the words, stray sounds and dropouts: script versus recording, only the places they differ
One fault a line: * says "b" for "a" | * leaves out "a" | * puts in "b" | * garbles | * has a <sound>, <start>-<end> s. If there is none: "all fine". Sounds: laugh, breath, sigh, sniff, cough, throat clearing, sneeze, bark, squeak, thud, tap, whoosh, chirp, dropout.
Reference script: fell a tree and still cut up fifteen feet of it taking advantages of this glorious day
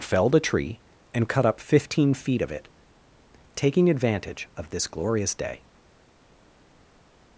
* says "felled" for "fell"
* leaves out "still"
* says "advantage" for "advantages"